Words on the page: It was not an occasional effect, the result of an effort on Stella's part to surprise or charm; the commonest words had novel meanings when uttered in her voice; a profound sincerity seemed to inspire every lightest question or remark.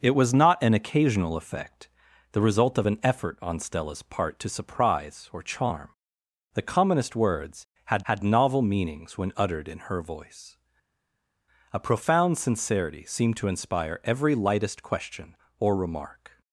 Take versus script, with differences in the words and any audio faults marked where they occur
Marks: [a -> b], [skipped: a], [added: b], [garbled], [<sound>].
It was not an occasional effect, the result of an effort on Stella's part to surprise or charm; the commonest words had [added: had] novel meanings when uttered in her voice; a profound sincerity seemed to inspire every lightest question or remark.